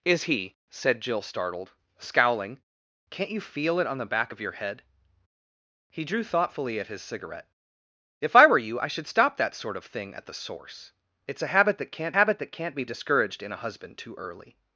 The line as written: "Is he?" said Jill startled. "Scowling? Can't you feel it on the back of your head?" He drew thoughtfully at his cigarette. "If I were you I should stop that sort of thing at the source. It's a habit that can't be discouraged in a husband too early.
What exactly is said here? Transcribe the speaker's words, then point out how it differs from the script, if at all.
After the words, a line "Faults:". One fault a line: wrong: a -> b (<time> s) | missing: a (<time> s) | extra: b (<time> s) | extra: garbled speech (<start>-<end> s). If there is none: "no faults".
"Is he?" said Jill startled. "Scowling? Can't you feel it on the back of your head?" He drew thoughtfully at his cigarette. "If I were you I should stop that sort of thing at the source. It's a habit that can't habit that can't be discouraged in a husband too early.
Faults:
extra: habit that can't (12.2 s)